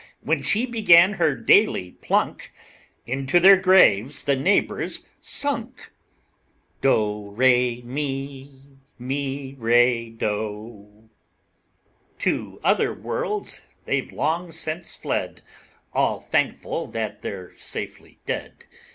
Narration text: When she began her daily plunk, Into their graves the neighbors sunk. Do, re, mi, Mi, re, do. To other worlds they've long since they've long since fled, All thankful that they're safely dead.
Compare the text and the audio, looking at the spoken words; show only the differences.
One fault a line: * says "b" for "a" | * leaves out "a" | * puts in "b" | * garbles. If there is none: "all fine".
* leaves out "they've long since"